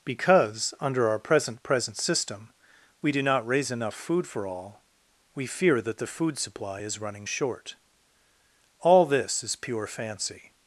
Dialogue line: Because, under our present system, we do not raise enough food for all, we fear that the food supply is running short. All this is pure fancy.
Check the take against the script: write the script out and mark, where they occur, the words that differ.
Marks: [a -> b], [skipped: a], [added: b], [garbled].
Because, under our present [added: present] system, we do not raise enough food for all, we fear that the food supply is running short. All this is pure fancy.